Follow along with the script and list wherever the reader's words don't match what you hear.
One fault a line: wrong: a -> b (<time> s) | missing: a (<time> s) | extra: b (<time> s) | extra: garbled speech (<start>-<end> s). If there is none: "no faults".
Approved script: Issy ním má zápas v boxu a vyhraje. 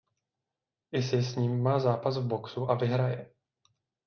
extra: s (1.2 s)